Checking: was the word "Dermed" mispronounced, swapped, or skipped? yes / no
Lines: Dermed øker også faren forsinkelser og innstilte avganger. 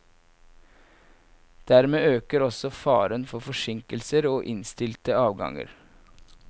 no